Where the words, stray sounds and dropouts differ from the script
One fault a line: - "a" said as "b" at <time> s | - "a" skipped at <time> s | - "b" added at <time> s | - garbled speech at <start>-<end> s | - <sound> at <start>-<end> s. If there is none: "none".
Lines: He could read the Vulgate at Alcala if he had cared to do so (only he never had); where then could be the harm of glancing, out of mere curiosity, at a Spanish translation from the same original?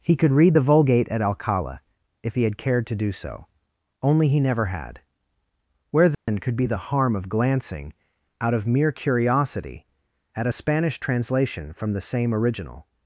- dropout at 6.1-6.3 s